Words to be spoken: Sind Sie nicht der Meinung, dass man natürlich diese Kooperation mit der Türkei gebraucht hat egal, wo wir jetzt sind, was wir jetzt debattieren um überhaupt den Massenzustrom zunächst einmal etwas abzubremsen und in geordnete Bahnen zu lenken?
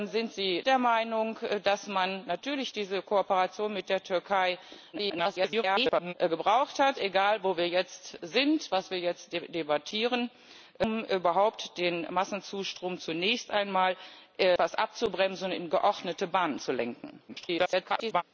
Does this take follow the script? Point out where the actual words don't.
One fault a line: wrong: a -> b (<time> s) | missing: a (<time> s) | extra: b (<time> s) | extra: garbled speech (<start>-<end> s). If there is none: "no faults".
missing: nicht (0.6 s)
extra: garbled speech (4.9-6.1 s)
extra: garbled speech (17.3-18.2 s)